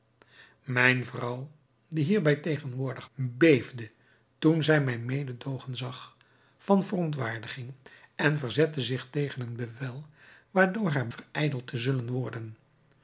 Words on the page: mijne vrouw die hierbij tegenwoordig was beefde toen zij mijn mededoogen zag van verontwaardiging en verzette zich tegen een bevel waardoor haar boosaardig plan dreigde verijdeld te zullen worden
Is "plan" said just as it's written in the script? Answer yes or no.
no